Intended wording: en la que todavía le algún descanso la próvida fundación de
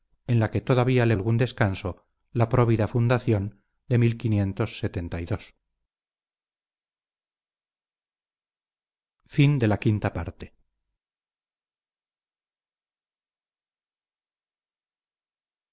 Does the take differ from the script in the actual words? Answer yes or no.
no